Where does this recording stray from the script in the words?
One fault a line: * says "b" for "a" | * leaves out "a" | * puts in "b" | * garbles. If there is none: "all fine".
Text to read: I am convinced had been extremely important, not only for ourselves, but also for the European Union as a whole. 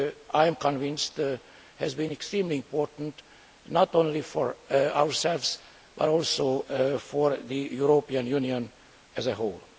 * says "has" for "had"